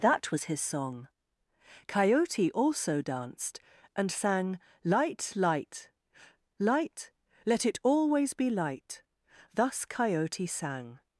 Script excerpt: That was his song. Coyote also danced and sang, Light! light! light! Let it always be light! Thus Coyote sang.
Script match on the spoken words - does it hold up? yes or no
yes